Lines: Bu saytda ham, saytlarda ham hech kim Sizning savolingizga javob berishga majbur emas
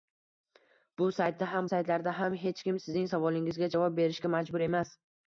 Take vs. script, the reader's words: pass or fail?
pass